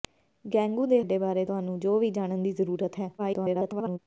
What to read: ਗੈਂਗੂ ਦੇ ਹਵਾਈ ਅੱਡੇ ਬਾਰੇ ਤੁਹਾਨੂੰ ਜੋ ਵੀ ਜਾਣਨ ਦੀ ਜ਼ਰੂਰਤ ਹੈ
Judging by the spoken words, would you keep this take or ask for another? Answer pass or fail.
fail